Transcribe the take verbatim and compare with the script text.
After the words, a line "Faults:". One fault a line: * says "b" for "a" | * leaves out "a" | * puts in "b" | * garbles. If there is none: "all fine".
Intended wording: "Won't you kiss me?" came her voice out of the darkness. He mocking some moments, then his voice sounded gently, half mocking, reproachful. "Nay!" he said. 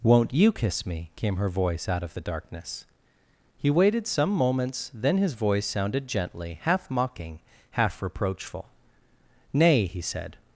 "Won't you kiss me?" came her voice out of the darkness. He waited some moments, then his voice sounded gently, half mocking, half reproachful. "Nay!" he said.
Faults:
* says "waited" for "mocking"
* puts in "half"